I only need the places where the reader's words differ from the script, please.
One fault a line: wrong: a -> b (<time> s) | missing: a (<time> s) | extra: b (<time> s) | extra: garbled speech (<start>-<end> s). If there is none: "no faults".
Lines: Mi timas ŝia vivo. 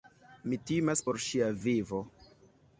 extra: por (1.1 s)